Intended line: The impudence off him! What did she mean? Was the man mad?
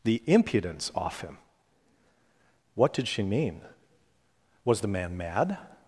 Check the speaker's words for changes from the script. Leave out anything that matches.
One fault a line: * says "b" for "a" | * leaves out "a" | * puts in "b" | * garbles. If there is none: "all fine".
all fine